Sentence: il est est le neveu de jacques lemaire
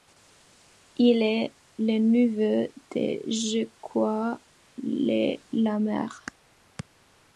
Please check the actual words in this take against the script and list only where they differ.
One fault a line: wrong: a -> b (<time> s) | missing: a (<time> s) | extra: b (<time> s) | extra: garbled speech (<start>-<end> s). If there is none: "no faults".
missing: est (1.5 s)